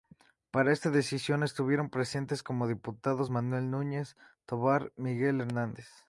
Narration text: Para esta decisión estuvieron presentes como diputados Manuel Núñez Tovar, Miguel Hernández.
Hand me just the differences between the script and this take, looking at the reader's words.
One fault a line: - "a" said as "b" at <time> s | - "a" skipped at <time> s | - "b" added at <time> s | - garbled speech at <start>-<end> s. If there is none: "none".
none